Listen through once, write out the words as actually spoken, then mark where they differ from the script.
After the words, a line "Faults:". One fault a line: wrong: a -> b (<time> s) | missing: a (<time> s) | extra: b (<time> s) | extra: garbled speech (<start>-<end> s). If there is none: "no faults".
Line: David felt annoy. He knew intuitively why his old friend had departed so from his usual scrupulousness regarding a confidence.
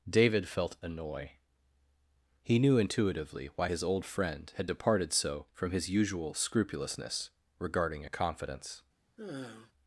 David felt annoy. He knew intuitively why his old friend had departed so from his usual scrupulousness regarding a confidence.
Faults:
no faults